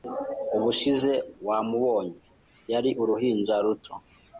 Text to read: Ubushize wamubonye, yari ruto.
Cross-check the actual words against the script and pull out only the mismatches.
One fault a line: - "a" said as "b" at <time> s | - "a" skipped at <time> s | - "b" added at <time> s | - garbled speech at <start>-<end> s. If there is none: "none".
- "uruhinja" added at 3.0 s